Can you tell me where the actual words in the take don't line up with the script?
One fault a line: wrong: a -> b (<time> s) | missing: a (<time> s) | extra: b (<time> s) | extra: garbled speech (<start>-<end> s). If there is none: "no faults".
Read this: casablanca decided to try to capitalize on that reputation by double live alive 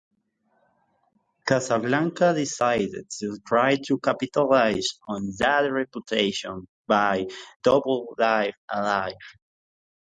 no faults